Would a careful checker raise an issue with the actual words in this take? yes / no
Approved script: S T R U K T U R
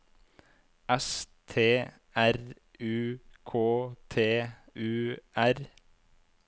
no